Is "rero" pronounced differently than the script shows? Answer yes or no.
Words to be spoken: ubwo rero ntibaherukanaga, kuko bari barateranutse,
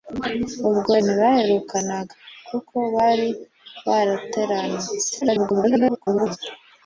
yes